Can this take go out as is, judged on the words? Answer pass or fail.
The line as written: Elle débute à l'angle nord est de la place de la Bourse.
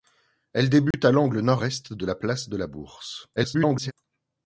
fail